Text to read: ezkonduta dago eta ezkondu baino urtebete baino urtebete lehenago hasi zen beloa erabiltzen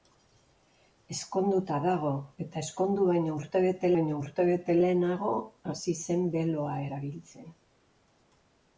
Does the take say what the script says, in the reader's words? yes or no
yes